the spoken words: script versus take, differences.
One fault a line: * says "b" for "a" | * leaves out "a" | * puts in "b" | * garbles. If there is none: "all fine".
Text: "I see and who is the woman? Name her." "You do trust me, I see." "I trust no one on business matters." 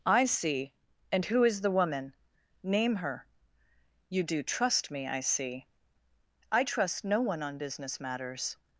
all fine